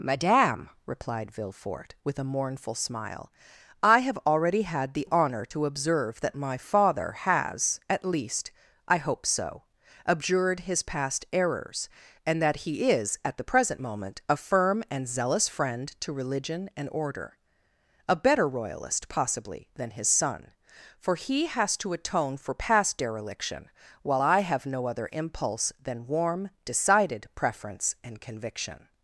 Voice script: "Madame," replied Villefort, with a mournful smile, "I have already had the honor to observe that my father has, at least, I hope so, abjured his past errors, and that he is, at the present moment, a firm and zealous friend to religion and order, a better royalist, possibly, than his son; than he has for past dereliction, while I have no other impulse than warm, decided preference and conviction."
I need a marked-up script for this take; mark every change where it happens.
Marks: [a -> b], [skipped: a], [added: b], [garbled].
"Madame," replied Villefort, with a mournful smile, "I have already had the honor to observe that my father has, at least, I hope so, abjured his past errors, and that he is, at the present moment, a firm and zealous friend to religion and order, a better royalist, possibly, than his son; [than -> for] he has [added: to atone] for past dereliction, while I have no other impulse than warm, decided preference and conviction."